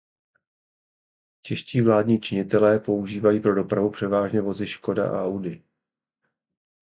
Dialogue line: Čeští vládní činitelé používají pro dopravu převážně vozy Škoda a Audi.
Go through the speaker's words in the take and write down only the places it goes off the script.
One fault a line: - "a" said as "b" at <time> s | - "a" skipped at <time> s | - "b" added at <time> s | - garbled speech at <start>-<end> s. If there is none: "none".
none